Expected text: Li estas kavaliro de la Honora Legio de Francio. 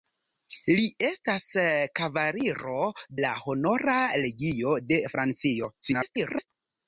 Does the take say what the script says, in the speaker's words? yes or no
no